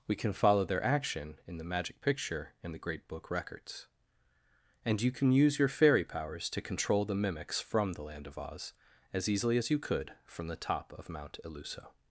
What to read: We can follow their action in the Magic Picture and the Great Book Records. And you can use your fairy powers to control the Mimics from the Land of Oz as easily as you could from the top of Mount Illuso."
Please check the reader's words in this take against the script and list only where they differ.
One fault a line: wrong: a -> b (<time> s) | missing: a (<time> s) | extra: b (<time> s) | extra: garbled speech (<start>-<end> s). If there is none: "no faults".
no faults